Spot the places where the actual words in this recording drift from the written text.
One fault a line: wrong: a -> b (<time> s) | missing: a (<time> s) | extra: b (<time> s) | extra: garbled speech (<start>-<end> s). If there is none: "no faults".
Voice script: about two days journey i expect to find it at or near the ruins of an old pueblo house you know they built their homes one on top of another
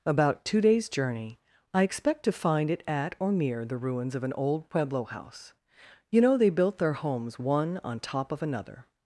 no faults